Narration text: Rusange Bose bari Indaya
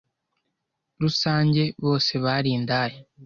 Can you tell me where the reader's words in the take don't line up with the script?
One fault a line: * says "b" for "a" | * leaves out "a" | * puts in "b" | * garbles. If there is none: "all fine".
all fine